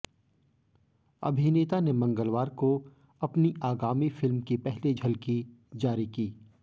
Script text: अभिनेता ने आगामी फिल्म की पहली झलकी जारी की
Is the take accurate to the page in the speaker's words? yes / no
no